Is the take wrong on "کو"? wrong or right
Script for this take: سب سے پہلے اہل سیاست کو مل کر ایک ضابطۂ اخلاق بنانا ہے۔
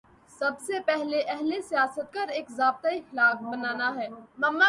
wrong